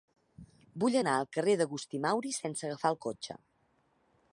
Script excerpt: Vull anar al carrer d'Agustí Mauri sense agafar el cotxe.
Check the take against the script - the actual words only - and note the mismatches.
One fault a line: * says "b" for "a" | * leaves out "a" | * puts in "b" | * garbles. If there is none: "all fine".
all fine